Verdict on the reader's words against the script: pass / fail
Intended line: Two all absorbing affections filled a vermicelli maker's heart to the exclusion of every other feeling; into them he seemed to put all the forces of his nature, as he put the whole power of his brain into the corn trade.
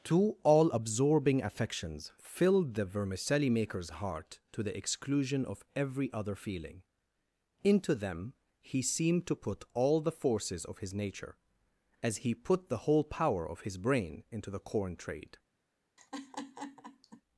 fail